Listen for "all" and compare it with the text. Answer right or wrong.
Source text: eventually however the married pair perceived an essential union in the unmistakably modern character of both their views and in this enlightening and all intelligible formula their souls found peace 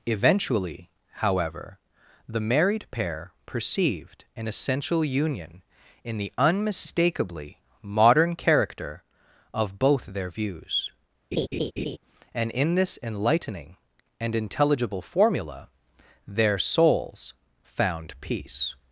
wrong